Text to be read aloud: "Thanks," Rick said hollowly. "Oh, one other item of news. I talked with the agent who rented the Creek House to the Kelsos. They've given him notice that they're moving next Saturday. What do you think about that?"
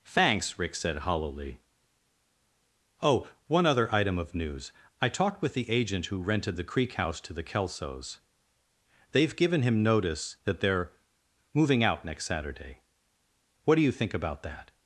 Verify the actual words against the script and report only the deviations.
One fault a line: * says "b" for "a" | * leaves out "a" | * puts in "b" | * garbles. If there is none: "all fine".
* puts in "out"